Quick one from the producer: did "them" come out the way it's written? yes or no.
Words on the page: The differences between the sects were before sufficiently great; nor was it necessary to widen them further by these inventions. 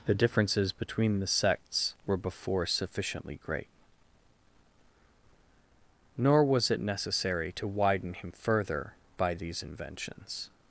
no